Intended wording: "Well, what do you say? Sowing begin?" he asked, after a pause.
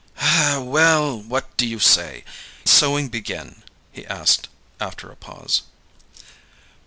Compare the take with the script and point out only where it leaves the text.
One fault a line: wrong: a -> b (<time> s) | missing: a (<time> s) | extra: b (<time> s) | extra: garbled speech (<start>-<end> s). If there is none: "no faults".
no faults